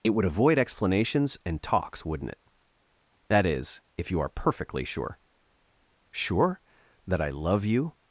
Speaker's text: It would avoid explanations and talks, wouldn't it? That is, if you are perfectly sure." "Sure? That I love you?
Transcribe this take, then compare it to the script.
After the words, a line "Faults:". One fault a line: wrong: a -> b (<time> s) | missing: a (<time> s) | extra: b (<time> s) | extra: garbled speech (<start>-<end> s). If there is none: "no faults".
It would avoid explanations and talks, wouldn't it? That is, if you are perfectly sure." "Sure? That I love you?
Faults:
no faults